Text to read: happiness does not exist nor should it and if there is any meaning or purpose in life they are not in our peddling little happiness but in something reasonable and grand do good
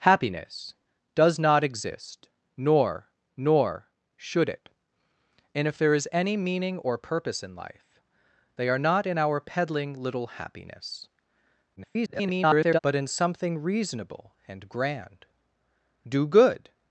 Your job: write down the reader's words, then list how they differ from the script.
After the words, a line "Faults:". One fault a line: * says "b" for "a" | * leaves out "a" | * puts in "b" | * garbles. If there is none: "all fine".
happiness does not exist nor nor should it and if there is any meaning or purpose in life they are not in our peddling little happiness [garbled] but in something reasonable and grand do good
Faults:
* puts in "nor"
* garbles